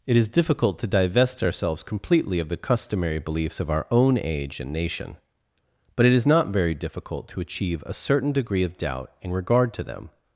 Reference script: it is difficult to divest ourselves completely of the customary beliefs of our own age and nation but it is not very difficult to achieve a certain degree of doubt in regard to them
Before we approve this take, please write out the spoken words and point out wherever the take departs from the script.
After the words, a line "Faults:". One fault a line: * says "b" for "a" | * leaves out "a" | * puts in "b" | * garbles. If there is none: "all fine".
it is difficult to divest ourselves completely of the customary beliefs of our own age and nation but it is not very difficult to achieve a certain degree of doubt in regard to them
Faults:
all fine